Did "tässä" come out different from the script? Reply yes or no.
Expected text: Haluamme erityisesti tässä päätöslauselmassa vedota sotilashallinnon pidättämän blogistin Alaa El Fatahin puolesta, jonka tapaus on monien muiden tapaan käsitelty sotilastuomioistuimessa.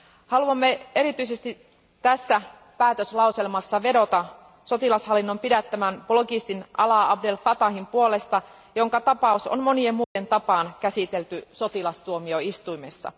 no